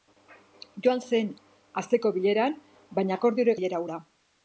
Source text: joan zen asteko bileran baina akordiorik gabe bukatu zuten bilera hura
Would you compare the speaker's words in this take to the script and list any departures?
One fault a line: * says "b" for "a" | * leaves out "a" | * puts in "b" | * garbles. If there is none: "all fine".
* leaves out "gabe bukatu zuten"